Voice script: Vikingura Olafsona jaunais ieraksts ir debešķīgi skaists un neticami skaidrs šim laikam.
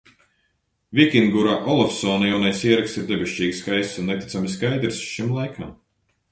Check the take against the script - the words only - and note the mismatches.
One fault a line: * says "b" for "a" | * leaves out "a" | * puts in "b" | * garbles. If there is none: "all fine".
all fine